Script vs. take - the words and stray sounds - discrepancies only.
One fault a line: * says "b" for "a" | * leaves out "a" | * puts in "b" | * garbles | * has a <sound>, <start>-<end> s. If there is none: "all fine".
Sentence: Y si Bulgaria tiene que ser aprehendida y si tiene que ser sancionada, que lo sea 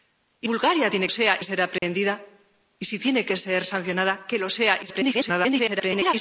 * leaves out "si"
* says "sea" for "que"
* has a dropout, 1.8-1.8 s
* garbles